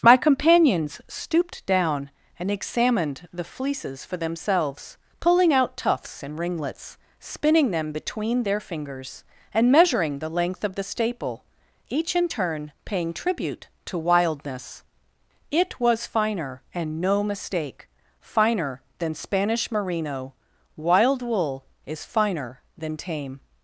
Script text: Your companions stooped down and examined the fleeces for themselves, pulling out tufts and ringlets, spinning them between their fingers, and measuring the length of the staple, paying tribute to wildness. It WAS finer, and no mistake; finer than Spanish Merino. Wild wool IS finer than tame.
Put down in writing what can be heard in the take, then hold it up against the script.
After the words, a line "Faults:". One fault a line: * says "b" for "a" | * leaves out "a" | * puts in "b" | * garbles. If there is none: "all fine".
My companions stooped down and examined the fleeces for themselves, pulling out tufts and ringlets, spinning them between their fingers, and measuring the length of the staple, each in turn paying tribute to wildness. It WAS finer, and no mistake; finer than Spanish Merino. Wild wool IS finer than tame.
Faults:
* says "My" for "Your"
* puts in "each in turn"